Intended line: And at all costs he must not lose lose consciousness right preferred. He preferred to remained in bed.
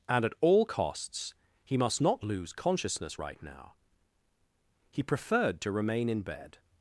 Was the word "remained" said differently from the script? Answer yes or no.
yes